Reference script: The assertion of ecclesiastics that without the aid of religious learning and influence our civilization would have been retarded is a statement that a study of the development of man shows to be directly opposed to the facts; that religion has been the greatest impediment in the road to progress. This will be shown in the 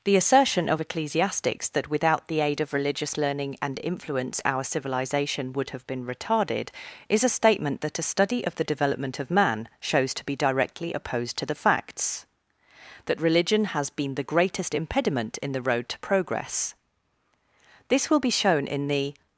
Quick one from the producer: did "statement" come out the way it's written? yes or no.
yes